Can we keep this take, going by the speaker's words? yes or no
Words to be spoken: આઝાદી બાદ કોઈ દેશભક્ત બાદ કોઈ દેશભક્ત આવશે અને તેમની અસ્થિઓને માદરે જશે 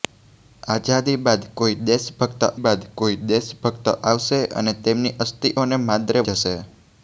yes